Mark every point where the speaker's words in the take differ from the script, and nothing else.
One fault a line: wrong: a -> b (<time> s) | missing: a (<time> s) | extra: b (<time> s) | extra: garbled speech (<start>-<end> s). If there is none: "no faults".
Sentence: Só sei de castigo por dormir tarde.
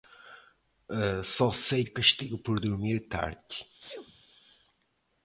no faults